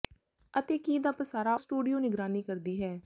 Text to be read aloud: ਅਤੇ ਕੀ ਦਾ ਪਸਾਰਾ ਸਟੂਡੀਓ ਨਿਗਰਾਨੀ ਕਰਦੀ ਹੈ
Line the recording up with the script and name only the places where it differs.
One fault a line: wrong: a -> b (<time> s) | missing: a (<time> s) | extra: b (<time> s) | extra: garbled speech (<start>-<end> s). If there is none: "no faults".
no faults